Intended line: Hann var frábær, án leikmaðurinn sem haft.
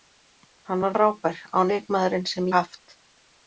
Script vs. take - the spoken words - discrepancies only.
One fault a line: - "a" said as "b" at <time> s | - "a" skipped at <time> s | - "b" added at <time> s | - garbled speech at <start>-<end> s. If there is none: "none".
none